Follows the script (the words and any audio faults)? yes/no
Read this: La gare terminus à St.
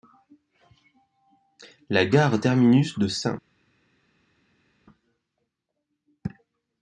no